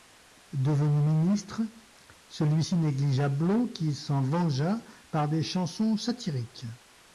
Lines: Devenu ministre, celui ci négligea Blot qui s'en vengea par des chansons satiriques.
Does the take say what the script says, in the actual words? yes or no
yes